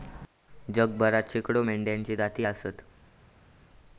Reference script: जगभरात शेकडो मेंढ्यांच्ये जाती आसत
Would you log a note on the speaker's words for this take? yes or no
no